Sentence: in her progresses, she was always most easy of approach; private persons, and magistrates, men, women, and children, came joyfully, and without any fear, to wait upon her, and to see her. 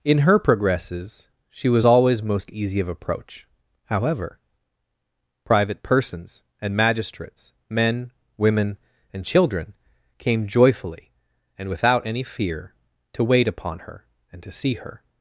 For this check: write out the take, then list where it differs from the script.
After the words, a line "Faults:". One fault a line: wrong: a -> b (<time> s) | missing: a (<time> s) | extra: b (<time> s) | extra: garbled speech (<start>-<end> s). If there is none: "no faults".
in her progresses, she was always most easy of approach; however private persons, and magistrates, men, women, and children, came joyfully, and without any fear, to wait upon her, and to see her.
Faults:
extra: however (3.8 s)